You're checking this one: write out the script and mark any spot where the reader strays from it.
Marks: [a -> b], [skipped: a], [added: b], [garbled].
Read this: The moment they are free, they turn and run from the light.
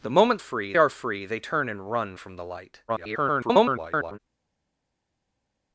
The moment [they -> free] are free, they turn and run from the light. [garbled]